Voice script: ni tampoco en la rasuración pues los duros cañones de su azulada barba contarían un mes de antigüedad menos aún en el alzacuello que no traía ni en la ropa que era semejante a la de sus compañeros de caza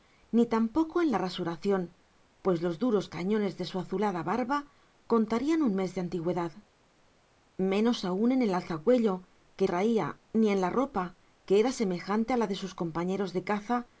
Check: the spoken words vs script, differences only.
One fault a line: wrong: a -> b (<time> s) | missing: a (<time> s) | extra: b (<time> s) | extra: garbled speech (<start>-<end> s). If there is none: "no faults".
missing: no (9.7 s)